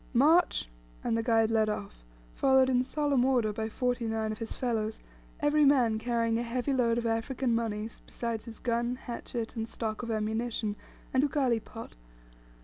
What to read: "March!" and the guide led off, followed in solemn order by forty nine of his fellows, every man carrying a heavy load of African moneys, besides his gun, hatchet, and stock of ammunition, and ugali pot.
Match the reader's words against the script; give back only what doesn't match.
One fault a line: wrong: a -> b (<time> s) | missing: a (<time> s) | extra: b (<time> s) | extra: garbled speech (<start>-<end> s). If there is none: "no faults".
no faults